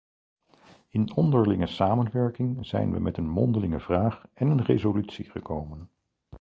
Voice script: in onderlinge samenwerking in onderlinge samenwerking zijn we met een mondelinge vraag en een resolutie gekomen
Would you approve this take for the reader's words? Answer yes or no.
no